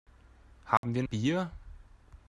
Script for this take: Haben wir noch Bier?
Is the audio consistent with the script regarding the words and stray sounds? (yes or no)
no